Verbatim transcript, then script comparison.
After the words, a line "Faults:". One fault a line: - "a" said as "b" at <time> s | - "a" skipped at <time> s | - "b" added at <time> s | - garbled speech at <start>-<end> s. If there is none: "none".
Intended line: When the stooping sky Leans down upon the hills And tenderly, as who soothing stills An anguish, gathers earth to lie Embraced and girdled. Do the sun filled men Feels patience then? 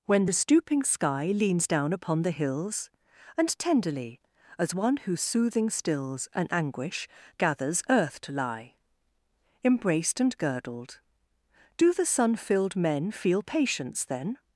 When the stooping sky Leans down upon the hills And tenderly, as one who soothing stills An anguish, gathers earth to lie Embraced and girdled. Do the sun filled men Feel patience then?
Faults:
- "one" added at 4.7 s
- "Feels" said as "Feel" at 13.1 s